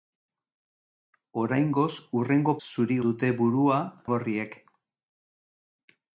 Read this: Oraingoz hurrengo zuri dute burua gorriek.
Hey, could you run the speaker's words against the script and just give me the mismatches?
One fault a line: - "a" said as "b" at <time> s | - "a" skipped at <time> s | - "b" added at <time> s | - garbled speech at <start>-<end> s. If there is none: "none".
none